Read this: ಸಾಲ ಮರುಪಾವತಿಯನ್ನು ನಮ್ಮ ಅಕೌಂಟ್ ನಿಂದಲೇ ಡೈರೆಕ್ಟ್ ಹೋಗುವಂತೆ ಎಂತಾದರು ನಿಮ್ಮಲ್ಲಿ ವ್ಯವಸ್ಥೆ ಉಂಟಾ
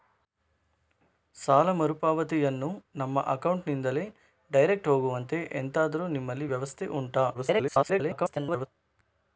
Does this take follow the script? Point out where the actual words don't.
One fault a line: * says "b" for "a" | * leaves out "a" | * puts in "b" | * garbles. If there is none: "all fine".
* garbles